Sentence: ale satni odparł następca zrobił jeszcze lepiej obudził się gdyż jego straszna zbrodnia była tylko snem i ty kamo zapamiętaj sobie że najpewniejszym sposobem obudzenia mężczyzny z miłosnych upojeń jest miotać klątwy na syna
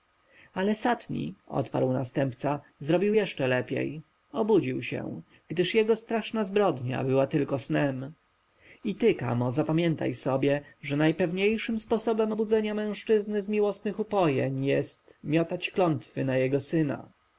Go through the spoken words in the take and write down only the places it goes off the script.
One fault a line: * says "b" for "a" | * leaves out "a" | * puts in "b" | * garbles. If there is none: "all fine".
* puts in "jego"